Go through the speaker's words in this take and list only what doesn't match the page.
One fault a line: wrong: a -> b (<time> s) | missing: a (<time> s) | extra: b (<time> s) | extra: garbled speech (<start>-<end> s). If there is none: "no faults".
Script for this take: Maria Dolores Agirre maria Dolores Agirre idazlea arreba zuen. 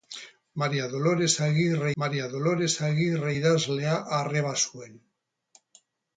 no faults